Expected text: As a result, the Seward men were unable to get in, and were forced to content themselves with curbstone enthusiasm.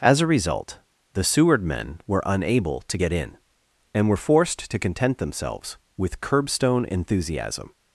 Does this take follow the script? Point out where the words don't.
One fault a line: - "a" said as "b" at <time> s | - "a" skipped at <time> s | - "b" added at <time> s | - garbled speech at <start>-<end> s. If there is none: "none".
none